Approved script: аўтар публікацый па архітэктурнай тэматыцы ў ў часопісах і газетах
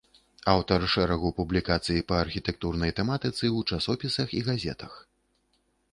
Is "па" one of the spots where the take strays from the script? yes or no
no